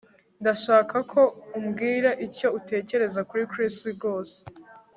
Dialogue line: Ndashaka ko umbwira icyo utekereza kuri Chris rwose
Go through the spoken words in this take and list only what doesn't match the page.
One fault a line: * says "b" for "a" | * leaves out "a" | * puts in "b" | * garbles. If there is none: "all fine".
all fine